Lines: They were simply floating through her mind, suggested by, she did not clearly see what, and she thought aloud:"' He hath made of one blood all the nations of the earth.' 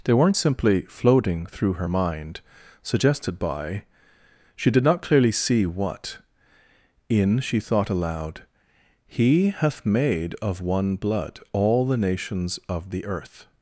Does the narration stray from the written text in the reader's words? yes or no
yes